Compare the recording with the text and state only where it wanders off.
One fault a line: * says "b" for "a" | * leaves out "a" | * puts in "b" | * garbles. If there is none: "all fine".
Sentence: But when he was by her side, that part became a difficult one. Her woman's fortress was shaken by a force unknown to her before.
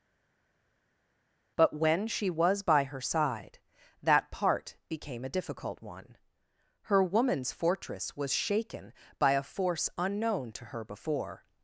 * says "she" for "he"